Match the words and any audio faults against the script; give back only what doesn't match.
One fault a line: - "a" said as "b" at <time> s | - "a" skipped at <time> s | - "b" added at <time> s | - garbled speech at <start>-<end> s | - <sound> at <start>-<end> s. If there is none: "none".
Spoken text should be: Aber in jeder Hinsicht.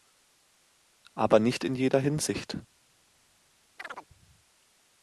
- "nicht" added at 1.4 s
- chirp at 3.8-4.1 s